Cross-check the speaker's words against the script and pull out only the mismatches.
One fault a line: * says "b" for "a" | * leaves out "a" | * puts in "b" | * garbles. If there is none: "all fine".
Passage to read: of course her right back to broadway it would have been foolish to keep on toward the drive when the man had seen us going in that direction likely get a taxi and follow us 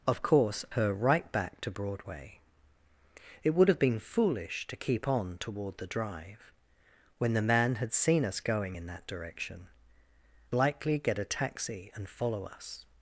all fine